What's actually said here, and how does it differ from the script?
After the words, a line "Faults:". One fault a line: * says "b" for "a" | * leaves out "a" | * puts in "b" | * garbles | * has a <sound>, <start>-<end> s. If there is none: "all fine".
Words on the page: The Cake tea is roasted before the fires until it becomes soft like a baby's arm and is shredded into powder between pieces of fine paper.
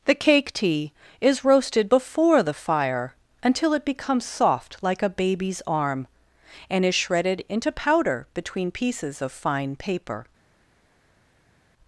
The Cake tea is roasted before the fire until it becomes soft like a baby's arm and is shredded into powder between pieces of fine paper.
Faults:
* says "fire" for "fires"